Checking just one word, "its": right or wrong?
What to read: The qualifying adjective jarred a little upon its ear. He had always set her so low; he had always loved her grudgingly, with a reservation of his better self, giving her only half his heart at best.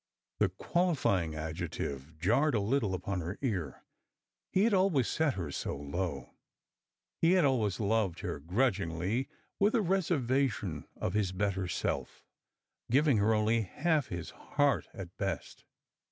wrong